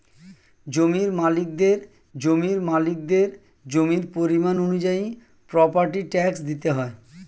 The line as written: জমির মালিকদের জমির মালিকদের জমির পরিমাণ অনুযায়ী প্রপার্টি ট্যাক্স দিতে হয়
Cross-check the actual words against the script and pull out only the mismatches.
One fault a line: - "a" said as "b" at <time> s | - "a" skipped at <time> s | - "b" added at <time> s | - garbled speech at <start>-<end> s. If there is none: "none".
none